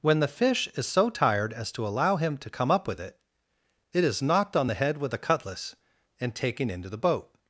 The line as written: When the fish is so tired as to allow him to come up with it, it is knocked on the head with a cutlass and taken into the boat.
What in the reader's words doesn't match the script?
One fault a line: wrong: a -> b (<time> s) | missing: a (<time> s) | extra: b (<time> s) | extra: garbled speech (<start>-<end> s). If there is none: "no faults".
no faults